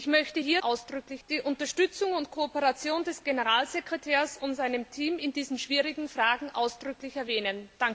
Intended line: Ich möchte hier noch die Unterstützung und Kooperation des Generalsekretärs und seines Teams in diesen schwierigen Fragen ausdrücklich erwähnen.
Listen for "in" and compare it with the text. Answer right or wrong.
right